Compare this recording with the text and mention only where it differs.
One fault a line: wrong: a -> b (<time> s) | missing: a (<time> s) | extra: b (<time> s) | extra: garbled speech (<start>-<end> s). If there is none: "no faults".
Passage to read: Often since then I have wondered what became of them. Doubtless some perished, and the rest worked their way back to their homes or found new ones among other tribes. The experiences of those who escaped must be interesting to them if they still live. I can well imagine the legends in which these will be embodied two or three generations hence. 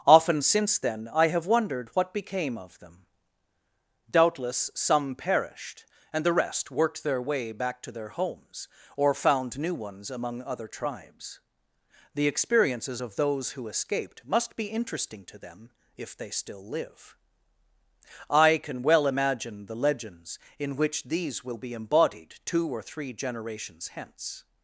no faults